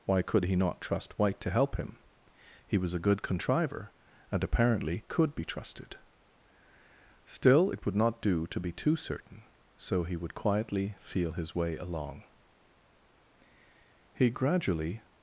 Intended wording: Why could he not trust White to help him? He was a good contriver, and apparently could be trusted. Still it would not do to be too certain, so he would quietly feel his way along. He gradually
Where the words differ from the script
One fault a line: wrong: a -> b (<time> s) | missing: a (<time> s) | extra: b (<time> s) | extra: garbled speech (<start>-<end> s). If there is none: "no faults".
no faults